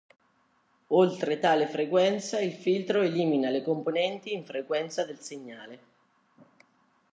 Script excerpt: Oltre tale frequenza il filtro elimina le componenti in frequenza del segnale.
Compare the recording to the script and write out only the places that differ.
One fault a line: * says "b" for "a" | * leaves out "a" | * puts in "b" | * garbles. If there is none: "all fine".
all fine